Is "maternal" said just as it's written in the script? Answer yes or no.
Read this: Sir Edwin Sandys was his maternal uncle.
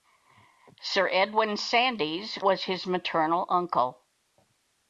yes